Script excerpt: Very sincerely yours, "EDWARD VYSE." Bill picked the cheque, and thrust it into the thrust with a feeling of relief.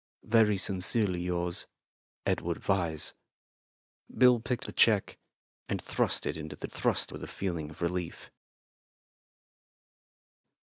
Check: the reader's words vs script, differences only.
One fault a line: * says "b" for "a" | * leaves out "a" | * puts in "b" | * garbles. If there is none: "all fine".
all fine